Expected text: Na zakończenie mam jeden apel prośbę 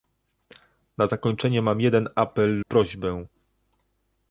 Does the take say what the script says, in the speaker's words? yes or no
yes